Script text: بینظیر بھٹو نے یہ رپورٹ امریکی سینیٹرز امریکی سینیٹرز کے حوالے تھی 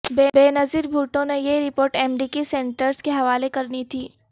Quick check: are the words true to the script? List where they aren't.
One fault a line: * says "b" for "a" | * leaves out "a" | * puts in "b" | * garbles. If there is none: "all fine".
* leaves out "امریکی سینیٹرز"
* puts in "کرنی"